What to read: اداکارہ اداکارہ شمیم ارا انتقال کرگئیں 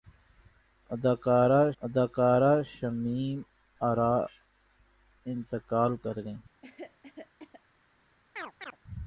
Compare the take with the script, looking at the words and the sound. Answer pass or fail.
fail